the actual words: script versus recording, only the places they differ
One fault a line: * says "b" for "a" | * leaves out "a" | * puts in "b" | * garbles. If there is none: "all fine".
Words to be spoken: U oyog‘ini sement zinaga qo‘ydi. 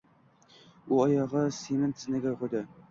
all fine